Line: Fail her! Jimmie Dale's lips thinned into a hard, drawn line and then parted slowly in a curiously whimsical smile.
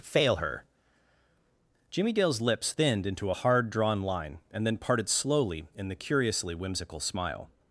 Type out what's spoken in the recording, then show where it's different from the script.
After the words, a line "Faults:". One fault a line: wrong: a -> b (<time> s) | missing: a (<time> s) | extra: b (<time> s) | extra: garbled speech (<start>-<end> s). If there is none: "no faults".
Fail her! Jimmie Dale's lips thinned into a hard, drawn line and then parted slowly in the curiously whimsical smile.
Faults:
wrong: a -> the (5.9 s)